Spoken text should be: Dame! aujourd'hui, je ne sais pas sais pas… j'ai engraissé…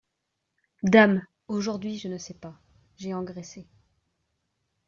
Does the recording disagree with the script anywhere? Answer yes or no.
yes